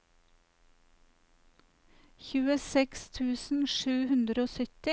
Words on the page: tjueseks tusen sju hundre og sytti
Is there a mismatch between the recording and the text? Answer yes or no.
no